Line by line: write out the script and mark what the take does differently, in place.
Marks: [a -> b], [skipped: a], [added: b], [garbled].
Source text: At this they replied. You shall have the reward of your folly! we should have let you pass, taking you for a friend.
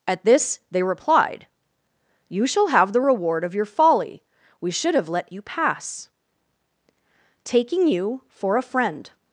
At this they replied. You shall have the reward of your folly! we should have let you pass, taking you for a friend.